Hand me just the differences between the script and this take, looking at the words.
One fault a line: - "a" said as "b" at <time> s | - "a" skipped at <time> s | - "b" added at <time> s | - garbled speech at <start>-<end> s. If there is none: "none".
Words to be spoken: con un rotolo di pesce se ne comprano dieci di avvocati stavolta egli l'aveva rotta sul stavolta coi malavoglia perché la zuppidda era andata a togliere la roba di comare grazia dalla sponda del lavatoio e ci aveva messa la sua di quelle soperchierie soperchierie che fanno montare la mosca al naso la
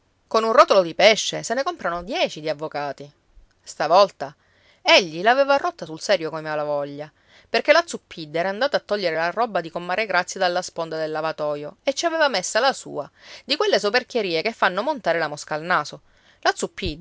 - "stavolta" said as "serio" at 6.0 s
- "soperchierie" skipped at 14.4 s